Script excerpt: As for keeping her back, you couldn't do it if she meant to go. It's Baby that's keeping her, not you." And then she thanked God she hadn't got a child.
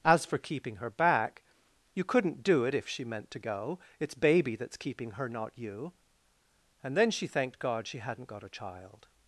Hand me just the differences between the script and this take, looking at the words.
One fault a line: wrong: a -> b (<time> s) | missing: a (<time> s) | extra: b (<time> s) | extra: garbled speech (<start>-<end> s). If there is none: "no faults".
no faults